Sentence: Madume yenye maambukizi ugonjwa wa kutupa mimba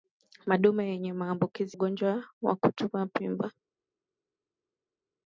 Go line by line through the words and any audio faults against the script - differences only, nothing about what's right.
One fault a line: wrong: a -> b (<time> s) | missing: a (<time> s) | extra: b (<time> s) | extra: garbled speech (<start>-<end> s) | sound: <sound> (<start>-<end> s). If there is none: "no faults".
no faults